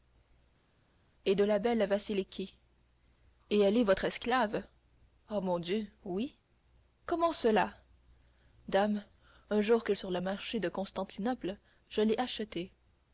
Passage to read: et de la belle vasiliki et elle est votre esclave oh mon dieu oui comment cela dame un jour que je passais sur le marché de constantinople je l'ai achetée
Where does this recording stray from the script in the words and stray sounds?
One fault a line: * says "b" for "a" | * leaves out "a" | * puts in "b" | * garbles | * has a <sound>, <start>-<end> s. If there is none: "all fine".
* leaves out "je passais"